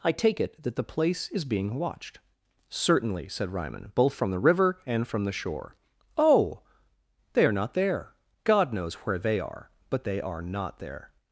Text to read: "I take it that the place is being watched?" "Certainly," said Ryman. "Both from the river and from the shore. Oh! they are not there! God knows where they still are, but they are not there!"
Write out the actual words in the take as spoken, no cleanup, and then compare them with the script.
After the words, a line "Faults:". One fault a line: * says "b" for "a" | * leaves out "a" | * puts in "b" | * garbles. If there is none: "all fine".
"I take it that the place is being watched?" "Certainly," said Ryman. "Both from the river and from the shore. Oh! they are not there! God knows where they are, but they are not there!"
Faults:
* leaves out "still"